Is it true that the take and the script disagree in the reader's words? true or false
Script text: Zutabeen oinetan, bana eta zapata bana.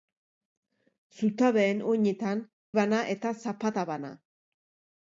false